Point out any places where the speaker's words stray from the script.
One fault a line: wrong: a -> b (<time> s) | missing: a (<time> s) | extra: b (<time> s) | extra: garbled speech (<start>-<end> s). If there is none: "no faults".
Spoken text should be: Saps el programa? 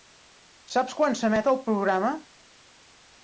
extra: quan s'emet (1.0 s)